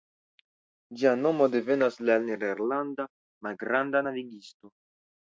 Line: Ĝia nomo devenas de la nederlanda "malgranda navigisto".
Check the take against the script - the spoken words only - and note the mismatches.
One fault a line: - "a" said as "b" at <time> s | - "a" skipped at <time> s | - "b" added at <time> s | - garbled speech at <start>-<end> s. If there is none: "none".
none